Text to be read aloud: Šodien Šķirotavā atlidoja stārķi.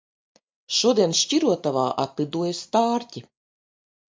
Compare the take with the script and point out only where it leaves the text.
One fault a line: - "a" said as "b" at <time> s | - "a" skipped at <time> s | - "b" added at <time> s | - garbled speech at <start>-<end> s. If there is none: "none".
none